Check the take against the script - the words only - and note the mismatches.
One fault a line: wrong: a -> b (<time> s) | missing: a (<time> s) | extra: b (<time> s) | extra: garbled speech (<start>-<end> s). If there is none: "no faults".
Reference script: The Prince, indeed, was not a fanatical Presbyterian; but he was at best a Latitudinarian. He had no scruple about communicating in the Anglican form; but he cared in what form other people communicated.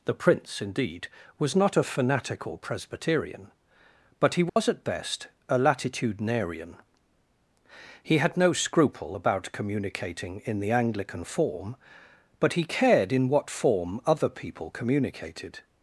no faults